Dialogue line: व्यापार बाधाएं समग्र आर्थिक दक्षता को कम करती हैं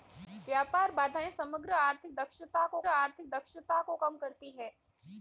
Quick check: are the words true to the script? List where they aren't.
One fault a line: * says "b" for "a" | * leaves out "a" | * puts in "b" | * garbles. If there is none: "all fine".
* puts in "आर्थिक दक्षता को"